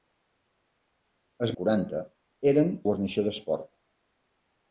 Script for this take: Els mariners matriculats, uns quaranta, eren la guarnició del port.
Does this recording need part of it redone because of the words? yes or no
yes